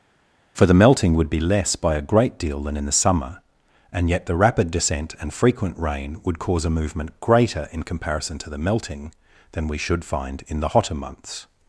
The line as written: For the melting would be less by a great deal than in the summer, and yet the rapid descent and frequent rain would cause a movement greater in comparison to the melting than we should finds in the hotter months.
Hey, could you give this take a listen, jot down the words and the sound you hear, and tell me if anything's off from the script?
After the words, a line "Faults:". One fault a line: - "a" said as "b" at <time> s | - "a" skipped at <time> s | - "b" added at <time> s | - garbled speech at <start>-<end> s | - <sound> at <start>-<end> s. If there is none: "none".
For the melting would be less by a great deal than in the summer, and yet the rapid descent and frequent rain would cause a movement greater in comparison to the melting than we should find in the hotter months.
Faults:
- "finds" said as "find" at 10.0 s